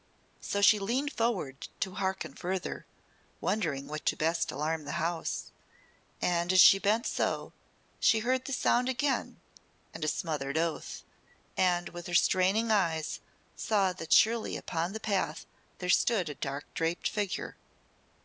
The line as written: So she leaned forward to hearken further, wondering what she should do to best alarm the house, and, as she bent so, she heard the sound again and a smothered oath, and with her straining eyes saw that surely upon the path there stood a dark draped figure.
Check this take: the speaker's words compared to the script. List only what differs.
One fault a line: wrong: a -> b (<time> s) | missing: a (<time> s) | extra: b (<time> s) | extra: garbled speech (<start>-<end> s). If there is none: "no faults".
missing: she should do (4.0 s)